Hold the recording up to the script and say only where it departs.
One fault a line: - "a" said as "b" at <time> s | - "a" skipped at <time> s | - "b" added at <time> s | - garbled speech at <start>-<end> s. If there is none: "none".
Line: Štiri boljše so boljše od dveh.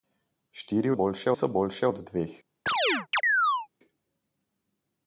none